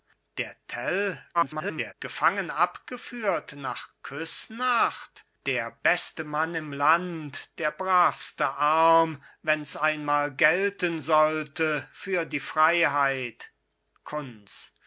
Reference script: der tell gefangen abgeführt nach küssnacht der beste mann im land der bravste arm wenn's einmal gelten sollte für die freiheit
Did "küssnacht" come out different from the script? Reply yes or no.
no